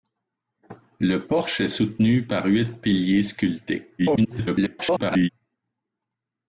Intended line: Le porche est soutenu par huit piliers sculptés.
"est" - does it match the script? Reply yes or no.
yes